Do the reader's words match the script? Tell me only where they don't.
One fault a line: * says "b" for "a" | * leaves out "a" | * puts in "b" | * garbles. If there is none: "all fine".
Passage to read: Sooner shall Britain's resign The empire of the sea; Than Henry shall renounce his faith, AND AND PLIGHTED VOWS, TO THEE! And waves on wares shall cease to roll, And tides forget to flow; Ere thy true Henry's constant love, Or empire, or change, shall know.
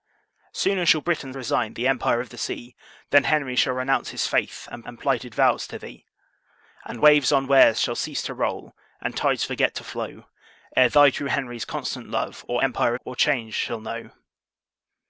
all fine